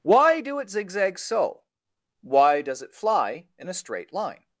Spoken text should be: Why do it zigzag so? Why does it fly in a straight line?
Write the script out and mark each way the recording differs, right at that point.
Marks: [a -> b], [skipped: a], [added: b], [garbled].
Why do it zigzag so? Why does it fly in a straight line?